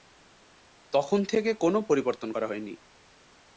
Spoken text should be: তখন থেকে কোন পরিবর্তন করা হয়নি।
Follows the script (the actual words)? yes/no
yes